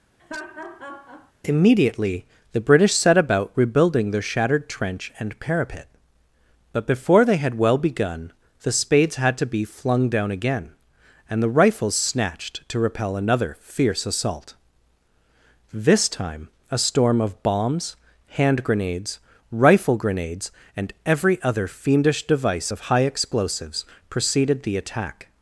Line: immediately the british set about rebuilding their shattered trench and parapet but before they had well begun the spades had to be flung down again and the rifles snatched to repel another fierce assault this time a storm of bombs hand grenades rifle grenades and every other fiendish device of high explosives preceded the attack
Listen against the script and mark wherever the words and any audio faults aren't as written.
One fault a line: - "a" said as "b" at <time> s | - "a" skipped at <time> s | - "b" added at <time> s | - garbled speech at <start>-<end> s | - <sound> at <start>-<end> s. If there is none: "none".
- laugh at 0.2-1.3 s